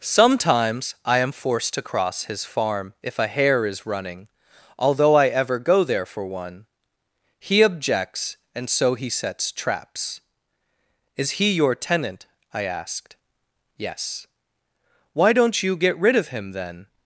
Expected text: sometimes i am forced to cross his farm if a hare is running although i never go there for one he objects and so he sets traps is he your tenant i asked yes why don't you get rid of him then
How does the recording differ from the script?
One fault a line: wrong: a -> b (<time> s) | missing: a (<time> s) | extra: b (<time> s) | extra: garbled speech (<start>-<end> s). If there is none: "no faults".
wrong: never -> ever (5.3 s)